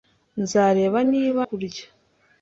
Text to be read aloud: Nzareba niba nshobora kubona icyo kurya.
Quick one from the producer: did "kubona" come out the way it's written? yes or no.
no